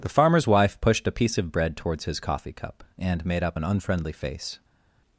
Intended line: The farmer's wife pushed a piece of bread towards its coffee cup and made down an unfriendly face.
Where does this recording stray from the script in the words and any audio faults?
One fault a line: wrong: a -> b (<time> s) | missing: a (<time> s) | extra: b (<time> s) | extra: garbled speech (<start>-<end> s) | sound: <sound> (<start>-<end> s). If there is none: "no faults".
wrong: its -> his (2.0 s)
wrong: down -> up (3.4 s)